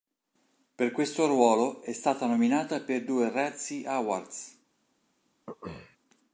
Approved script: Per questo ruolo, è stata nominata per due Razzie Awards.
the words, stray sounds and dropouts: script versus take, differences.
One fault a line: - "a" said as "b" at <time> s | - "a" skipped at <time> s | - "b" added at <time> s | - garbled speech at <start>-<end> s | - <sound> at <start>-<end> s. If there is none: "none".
- throat clearing at 5.5-6.0 s